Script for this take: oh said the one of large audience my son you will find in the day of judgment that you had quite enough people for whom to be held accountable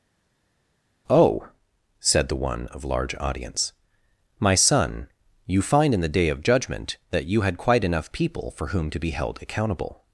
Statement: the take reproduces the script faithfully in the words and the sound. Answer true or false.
false